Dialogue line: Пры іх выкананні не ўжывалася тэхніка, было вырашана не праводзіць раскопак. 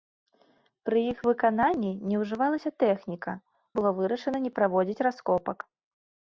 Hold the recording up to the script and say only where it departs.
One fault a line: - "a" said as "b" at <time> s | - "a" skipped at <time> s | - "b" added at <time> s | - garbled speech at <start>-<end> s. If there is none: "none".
none